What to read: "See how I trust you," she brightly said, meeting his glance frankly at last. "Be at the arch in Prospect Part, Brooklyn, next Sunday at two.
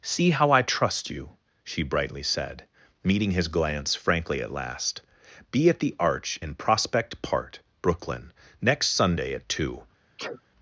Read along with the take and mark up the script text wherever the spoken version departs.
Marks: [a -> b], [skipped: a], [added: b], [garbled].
"See how I trust you," she brightly said, meeting his glance frankly at last. "Be at the arch in Prospect Part, Brooklyn, next Sunday at two.